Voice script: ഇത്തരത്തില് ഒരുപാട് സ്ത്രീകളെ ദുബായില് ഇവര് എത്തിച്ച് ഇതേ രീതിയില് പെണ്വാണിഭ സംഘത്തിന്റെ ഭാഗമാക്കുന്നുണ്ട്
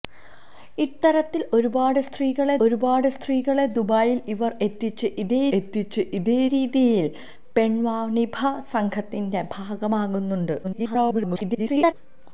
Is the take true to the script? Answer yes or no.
no